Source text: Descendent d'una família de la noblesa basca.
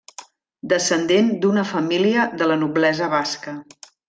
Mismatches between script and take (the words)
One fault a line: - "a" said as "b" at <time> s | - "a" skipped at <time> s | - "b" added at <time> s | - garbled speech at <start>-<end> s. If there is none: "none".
none